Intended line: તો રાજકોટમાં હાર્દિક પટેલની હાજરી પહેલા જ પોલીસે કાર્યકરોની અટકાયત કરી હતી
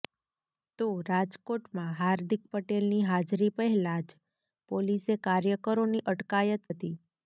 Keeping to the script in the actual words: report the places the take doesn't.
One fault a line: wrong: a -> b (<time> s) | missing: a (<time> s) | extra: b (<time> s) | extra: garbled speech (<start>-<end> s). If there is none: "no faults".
missing: કરી (6.7 s)